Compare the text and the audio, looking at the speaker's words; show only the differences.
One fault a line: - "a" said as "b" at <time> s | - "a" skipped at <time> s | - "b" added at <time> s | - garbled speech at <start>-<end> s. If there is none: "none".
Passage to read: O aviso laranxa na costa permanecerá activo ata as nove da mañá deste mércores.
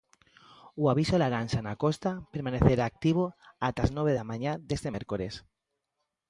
none